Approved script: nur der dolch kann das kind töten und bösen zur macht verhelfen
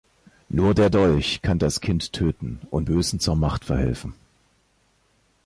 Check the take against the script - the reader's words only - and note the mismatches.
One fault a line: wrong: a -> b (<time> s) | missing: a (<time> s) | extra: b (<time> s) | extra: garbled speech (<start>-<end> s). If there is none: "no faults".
no faults